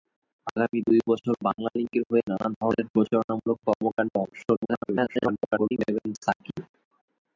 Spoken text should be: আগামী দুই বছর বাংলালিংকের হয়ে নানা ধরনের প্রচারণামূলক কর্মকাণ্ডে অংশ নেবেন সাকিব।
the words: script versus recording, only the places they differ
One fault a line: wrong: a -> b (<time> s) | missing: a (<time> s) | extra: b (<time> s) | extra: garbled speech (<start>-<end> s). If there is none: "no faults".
extra: garbled speech (4.6-5.8 s)